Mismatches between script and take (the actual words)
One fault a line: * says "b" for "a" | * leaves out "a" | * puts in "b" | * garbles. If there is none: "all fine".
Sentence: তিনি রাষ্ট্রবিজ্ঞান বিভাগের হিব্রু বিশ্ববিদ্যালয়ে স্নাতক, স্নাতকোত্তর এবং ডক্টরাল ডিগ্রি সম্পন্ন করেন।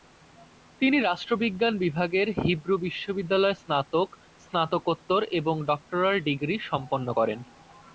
all fine